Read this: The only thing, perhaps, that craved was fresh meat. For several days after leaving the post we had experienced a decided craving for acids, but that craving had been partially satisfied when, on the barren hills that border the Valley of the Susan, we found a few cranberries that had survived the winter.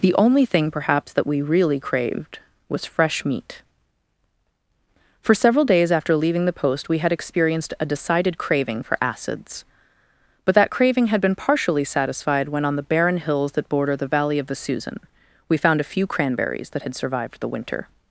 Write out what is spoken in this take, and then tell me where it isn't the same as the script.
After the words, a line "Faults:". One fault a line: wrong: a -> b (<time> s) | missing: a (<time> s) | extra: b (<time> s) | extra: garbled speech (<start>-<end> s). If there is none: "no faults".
The only thing, perhaps, that we really craved was fresh meat. For several days after leaving the post we had experienced a decided craving for acids, but that craving had been partially satisfied when, on the barren hills that border the Valley of the Susan, we found a few cranberries that had survived the winter.
Faults:
extra: we really (1.3 s)